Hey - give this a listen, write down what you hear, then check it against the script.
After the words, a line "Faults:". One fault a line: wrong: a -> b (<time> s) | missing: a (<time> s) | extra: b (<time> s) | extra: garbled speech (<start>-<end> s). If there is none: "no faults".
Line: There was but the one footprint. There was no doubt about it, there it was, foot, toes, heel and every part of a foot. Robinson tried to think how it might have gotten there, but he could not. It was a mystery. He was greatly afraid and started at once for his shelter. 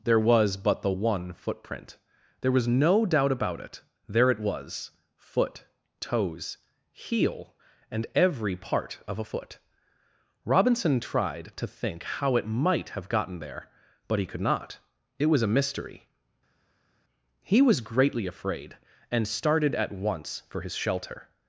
There was but the one footprint. There was no doubt about it, there it was, foot, toes, heel and every part of a foot. Robinson tried to think how it might have gotten there, but he could not. It was a mystery. He was greatly afraid and started at once for his shelter.
Faults:
no faults